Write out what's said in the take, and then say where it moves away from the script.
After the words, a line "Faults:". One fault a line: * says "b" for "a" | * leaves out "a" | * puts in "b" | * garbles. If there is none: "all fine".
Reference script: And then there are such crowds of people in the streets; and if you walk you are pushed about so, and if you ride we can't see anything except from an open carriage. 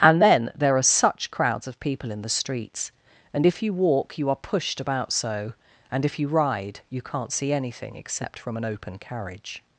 And then there are such crowds of people in the streets; and if you walk you are pushed about so, and if you ride you can't see anything except from an open carriage.
Faults:
* says "you" for "we"